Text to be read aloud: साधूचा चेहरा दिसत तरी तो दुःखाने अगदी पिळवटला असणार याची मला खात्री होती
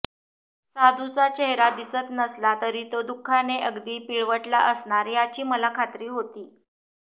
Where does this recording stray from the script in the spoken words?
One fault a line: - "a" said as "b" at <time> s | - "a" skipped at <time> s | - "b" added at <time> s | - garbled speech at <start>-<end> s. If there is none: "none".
- "नसला" added at 2.1 s